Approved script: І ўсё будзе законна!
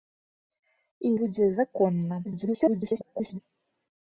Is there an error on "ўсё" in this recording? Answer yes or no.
yes